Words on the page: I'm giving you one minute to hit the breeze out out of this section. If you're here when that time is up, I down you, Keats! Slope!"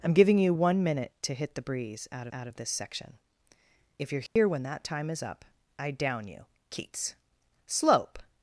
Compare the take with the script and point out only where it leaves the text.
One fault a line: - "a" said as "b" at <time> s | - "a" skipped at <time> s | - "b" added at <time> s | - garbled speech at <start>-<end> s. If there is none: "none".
none